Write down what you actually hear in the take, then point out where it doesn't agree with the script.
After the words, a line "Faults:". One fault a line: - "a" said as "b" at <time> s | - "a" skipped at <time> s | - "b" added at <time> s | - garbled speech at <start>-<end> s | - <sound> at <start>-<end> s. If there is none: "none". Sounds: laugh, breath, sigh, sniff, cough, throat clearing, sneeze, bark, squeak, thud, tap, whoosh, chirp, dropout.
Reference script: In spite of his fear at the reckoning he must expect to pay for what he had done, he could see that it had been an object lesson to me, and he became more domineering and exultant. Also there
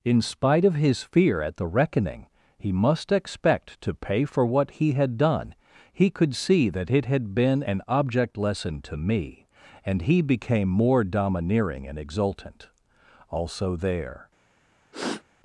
In spite of his fear at the reckoning he must expect to pay for what he had done, he could see that it had been an object lesson to me, and he became more domineering and exultant. Also there
Faults:
- sniff at 14.9-15.2 s